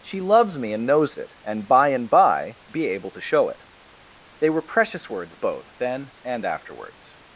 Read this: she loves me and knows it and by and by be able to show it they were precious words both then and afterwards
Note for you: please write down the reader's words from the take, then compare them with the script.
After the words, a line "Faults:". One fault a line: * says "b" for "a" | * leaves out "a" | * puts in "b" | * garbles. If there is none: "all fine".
she loves me and knows it and by and by be able to show it they were precious words both then and afterwards
Faults:
all fine